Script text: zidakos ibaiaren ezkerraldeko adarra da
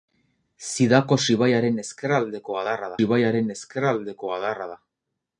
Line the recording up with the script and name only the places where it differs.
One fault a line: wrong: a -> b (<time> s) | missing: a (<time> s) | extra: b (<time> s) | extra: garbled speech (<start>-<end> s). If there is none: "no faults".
extra: ibaiaren ezkerraldeko adarra (3.0 s)